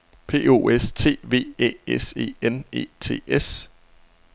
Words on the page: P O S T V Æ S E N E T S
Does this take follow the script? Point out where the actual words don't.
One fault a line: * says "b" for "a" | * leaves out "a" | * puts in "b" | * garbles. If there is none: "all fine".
all fine